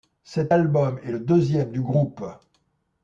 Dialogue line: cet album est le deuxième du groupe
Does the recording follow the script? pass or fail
pass